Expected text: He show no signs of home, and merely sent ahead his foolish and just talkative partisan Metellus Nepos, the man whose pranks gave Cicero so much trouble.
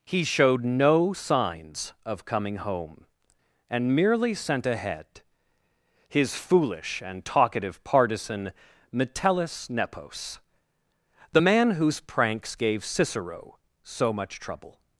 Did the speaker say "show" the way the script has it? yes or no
no